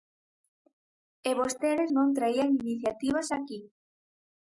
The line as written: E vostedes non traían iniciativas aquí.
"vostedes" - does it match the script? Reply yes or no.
yes